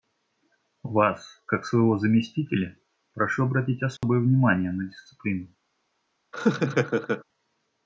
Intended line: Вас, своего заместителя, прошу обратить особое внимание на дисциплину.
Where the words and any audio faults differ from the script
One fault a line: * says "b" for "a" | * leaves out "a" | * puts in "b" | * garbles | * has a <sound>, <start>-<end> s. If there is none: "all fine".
* puts in "как"
* has a dropout, 4.0-4.0 s
* has a laugh, 6.3-7.2 s